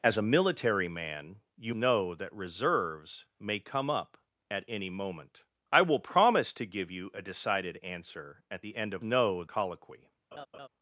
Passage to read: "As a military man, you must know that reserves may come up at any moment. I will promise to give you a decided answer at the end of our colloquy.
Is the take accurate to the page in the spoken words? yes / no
no